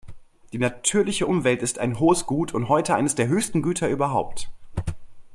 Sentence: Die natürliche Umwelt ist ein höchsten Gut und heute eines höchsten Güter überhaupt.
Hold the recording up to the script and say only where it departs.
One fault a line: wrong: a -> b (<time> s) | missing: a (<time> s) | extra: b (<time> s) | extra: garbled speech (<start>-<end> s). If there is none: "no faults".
wrong: höchsten -> hohes (2.0 s)
extra: der (3.1 s)